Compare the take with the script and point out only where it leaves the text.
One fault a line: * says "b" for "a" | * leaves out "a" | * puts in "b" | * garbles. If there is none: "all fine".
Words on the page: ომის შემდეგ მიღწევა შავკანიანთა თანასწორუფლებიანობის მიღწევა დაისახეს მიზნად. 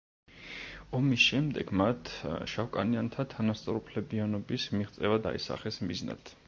* says "მათ" for "მიღწევა"